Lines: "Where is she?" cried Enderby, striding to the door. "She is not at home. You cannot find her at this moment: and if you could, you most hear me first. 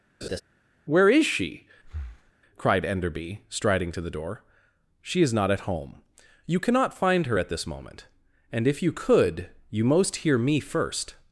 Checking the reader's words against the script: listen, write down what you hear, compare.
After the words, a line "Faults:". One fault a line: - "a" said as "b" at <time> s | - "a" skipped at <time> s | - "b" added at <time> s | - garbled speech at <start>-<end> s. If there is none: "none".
"Where is she?" cried Enderby, striding to the door. "She is not at home. You cannot find her at this moment: and if you could, you most hear me first.
Faults:
none